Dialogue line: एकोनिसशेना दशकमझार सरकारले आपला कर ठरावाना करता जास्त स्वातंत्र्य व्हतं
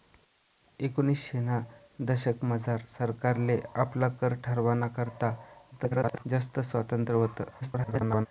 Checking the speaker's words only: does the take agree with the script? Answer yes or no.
no